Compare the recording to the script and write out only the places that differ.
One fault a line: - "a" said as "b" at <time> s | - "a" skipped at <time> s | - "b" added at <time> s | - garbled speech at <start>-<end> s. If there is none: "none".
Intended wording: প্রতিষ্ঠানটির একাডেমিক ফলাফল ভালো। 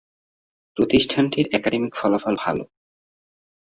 none